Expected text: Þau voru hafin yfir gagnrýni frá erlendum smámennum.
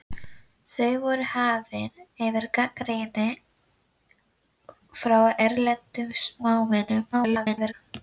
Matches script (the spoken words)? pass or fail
fail